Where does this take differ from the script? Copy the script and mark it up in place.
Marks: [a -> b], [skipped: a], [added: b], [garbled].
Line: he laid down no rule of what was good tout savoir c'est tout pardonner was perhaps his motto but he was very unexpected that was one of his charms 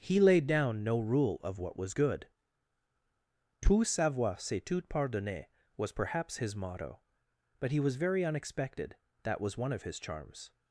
he laid down no rule of what was good tout savoir c'est tout pardonner was perhaps his motto but he was very unexpected that was one of his charms